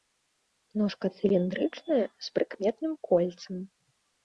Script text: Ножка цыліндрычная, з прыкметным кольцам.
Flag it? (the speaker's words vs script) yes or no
no